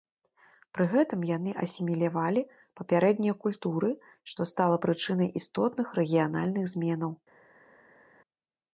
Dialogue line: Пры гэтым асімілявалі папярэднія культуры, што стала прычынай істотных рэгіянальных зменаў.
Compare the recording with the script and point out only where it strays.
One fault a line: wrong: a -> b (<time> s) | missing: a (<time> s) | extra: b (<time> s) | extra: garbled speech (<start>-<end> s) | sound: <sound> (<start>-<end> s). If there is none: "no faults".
extra: яны (1.3 s)